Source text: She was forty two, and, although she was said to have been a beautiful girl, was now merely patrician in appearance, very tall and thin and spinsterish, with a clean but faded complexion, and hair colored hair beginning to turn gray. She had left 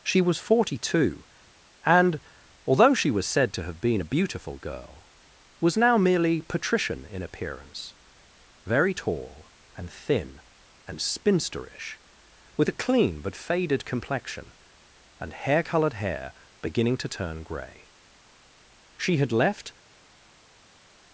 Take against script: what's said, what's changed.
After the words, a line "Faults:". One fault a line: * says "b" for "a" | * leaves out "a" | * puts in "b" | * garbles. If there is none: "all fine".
She was forty two, and, although she was said to have been a beautiful girl, was now merely patrician in appearance, very tall and thin and spinsterish, with a clean but faded complexion, and hair colored hair beginning to turn gray. She had left
Faults:
all fine